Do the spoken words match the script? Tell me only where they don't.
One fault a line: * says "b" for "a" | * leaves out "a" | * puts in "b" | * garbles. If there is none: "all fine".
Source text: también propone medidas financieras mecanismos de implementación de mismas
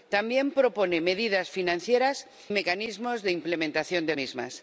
all fine